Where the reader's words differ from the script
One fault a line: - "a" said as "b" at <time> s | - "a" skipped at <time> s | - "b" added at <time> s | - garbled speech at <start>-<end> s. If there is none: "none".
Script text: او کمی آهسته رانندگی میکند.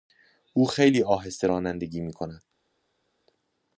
- "کمی" said as "خیلی" at 0.7 s